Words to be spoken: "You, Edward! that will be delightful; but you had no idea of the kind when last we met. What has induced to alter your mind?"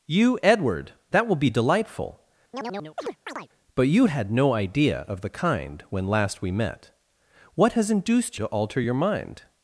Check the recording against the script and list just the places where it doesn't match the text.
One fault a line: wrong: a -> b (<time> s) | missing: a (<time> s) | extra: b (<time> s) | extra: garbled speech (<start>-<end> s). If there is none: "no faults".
no faults